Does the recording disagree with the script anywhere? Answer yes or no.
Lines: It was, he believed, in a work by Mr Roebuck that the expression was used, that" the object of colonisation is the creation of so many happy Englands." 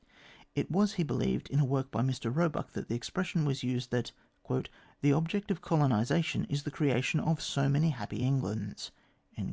no